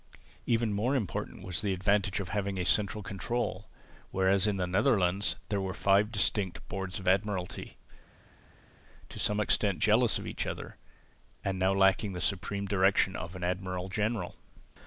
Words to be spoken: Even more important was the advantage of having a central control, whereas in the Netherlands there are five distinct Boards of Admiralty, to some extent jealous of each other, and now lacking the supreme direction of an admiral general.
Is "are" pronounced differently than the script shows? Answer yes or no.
yes